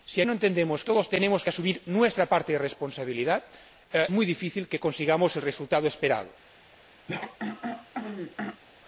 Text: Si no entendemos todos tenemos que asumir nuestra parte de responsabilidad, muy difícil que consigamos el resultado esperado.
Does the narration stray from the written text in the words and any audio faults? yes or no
yes